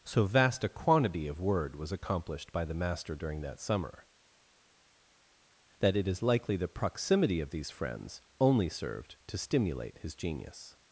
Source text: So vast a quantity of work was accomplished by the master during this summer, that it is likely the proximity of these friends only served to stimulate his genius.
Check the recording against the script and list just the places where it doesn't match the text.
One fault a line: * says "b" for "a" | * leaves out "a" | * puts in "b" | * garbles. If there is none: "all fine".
* says "word" for "work"
* says "that" for "this"